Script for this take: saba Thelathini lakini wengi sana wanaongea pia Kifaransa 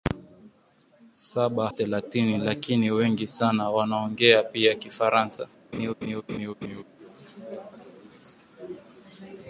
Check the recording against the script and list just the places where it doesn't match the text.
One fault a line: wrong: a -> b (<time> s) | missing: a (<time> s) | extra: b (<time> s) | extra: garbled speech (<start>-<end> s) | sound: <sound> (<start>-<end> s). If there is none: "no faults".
sound: laugh (5.7-6.8 s)